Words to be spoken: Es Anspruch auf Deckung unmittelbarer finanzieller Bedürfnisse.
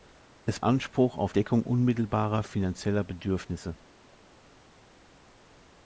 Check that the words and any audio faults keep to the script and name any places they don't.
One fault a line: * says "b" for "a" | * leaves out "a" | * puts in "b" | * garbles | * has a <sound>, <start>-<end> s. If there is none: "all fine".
all fine